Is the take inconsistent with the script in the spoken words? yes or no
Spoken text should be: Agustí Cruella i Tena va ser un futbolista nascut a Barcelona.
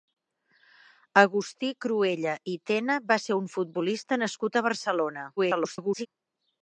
yes